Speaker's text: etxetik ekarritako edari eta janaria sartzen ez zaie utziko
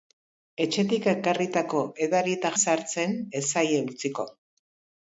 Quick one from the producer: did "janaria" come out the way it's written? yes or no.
no